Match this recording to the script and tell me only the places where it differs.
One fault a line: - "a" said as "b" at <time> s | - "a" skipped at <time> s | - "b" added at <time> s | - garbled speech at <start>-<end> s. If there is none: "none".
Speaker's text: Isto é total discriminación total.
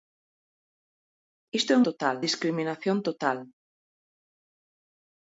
none